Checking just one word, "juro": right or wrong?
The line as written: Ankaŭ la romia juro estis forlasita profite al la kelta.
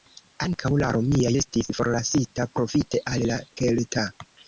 wrong